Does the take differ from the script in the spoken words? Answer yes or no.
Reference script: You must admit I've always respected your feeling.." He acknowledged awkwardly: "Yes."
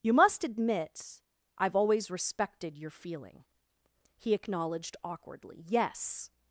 no